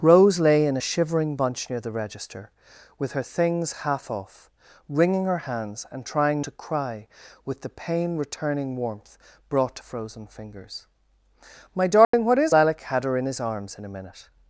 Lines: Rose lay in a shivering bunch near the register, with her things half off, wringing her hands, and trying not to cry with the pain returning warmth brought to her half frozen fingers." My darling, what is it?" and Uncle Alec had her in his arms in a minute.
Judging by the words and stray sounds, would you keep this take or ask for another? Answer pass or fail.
fail